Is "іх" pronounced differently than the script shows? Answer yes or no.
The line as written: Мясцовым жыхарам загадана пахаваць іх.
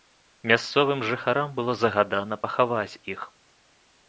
no